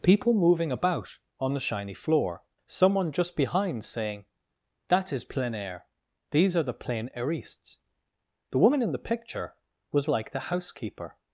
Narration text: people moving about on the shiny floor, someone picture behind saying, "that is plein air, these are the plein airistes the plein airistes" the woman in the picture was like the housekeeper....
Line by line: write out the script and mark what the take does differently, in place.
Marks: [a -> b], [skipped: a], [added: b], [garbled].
people moving about on the shiny floor, someone [picture -> just] behind saying, "that is plein air, these are the plein airistes the [skipped: plein airistes" the] woman in the picture was like the housekeeper....